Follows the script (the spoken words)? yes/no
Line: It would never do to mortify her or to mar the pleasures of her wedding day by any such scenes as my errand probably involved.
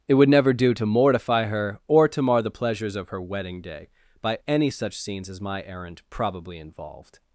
yes